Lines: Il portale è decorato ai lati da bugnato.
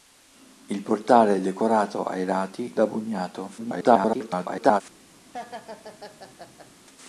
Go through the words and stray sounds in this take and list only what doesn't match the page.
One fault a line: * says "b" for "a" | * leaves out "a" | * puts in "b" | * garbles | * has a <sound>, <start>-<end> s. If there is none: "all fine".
* garbles
* has a laugh, 5.3-6.7 s